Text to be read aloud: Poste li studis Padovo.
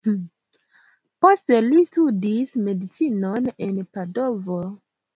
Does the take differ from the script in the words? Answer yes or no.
yes